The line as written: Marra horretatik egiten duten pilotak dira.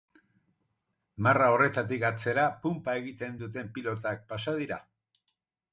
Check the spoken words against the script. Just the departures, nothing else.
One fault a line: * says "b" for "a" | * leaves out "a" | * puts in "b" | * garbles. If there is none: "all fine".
* puts in "atzera punpa"
* puts in "pasa"